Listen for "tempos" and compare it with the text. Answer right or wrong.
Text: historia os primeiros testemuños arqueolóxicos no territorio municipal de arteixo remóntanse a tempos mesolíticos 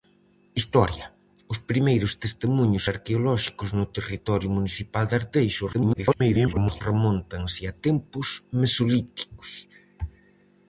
right